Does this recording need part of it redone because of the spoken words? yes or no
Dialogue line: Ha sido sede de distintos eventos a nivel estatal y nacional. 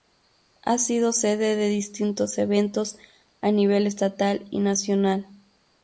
no